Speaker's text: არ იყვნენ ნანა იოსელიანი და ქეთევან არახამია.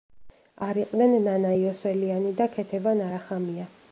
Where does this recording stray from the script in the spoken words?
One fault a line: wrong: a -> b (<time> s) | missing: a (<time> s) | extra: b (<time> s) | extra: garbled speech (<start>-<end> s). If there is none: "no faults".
no faults